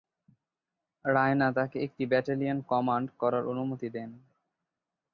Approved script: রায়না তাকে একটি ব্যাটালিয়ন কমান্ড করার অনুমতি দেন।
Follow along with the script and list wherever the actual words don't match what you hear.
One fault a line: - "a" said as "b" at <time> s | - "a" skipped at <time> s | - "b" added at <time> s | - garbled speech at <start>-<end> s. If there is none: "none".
none